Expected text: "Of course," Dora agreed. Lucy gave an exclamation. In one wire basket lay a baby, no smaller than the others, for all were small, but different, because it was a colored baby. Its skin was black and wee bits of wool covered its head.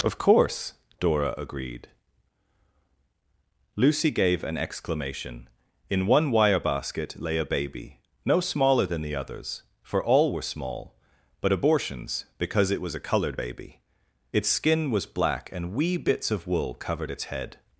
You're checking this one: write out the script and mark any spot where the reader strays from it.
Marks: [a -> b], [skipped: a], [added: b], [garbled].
"Of course," Dora agreed. Lucy gave an exclamation. In one wire basket lay a baby, no smaller than the others, for all were small, but [different, -> abortions] because it was a colored baby. Its skin was black and wee bits of wool covered its head.